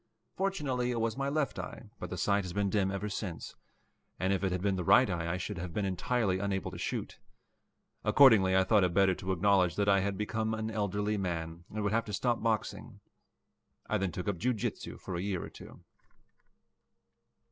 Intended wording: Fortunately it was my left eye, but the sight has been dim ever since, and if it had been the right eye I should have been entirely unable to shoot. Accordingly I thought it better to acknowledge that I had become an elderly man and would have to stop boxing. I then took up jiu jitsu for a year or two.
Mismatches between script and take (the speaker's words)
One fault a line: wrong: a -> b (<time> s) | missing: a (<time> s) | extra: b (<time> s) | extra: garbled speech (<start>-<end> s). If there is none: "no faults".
no faults